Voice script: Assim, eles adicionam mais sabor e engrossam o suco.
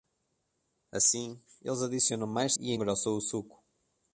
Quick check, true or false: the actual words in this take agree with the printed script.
false